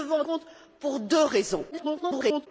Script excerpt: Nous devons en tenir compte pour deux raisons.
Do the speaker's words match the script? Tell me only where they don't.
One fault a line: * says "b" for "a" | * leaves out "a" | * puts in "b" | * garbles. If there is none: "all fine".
* leaves out "tenir"
* garbles